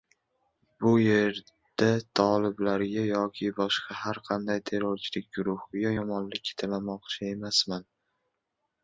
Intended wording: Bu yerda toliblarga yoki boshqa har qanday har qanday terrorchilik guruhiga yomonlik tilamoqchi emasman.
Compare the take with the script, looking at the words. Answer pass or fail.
fail